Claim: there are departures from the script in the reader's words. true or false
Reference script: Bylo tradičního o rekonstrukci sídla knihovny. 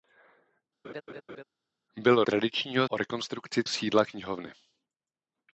false